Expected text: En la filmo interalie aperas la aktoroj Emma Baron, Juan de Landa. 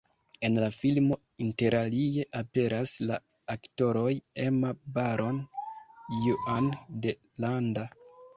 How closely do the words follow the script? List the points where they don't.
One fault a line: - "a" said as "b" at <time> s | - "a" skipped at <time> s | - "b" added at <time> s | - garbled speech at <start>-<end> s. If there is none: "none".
none